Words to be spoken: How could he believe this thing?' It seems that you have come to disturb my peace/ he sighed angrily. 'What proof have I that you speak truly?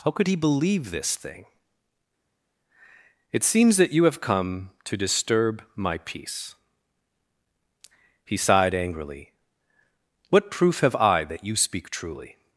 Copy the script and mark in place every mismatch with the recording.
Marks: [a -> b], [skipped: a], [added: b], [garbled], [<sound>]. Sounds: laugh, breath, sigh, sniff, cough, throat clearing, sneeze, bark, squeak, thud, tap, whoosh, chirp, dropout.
How could he believe this thing?' It seems that you have come to disturb my peace/ he sighed angrily. 'What proof have I that you speak truly?